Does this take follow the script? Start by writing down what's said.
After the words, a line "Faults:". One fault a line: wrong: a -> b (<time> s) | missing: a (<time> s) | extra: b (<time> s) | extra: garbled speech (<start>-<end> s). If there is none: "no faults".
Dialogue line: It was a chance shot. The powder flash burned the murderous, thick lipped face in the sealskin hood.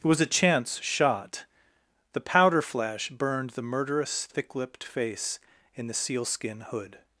It was a chance shot. The powder flash burned the murderous, thick lipped face in the sealskin hood.
Faults:
no faults